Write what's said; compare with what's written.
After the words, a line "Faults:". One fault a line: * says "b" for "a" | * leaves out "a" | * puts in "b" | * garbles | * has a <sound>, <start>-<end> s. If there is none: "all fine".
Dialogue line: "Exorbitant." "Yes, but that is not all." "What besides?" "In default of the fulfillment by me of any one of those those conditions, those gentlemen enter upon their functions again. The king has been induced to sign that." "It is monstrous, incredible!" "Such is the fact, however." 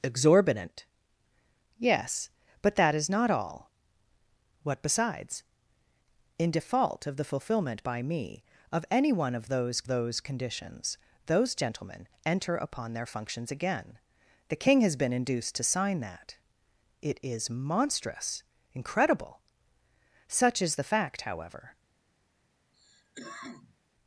"Exorbitant." "Yes, but that is not all." "What besides?" "In default of the fulfillment by me of any one of those those conditions, those gentlemen enter upon their functions again. The king has been induced to sign that." "It is monstrous, incredible!" "Such is the fact, however."
Faults:
* has a cough, 22.7-23.8 s